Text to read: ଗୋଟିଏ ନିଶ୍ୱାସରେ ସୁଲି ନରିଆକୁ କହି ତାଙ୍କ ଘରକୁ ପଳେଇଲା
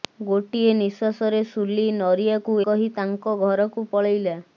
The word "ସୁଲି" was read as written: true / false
true